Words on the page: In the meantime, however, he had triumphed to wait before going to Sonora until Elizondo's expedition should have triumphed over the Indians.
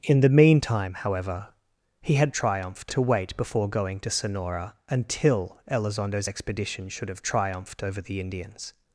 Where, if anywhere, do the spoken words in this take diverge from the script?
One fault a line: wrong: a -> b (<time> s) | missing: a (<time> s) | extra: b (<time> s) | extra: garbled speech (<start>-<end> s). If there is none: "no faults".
no faults